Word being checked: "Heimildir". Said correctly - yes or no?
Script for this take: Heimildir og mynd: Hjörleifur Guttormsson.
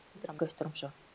yes